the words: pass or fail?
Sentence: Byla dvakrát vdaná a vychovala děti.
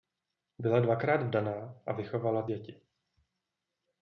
pass